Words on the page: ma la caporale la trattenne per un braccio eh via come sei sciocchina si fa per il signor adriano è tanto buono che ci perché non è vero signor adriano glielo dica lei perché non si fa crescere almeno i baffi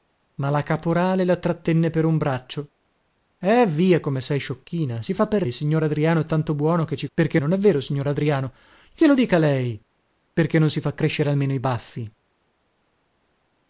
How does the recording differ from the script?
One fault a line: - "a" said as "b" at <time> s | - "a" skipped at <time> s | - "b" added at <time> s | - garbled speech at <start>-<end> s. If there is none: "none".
none